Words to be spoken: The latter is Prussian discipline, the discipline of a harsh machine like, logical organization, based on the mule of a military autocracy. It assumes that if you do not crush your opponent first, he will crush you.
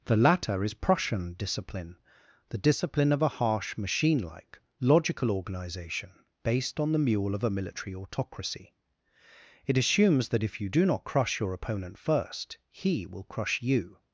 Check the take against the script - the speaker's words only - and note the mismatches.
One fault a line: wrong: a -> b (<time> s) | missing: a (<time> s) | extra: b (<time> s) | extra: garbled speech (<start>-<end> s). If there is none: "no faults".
no faults